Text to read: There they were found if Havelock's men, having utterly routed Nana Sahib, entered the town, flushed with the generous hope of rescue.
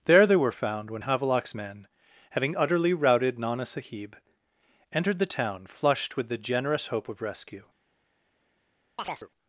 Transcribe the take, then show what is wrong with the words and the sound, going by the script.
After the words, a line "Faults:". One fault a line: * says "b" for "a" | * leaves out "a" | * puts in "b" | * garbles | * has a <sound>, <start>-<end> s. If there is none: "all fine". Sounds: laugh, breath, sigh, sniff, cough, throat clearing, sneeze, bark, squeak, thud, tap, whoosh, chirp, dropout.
There they were found when Havelock's men, having utterly routed Nana Sahib, entered the town, flushed with the generous hope of rescue.
Faults:
* says "when" for "if"
* has a chirp, 9.0-9.3 s